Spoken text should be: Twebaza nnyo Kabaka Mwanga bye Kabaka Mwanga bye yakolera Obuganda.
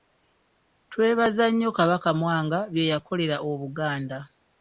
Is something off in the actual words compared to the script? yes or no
yes